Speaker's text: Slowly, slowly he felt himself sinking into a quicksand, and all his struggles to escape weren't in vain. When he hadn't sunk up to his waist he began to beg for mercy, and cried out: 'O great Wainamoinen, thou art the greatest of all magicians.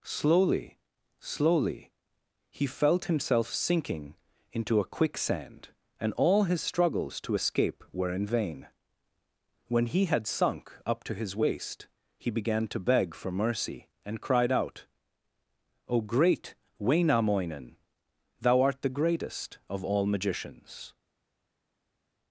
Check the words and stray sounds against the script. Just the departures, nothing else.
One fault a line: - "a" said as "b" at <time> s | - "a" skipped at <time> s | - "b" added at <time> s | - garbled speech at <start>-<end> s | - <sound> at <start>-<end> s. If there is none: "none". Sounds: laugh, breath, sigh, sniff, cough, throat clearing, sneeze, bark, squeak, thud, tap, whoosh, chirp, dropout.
- "weren't" said as "were" at 7.9 s
- "hadn't" said as "had" at 10.1 s